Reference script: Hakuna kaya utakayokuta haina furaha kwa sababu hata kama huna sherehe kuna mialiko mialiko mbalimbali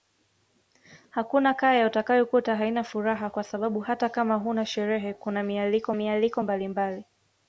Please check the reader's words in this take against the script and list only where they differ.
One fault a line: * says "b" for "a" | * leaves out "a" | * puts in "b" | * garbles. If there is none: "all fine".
all fine